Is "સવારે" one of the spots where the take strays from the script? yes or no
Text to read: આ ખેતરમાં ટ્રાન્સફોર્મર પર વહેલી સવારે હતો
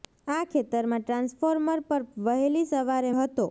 no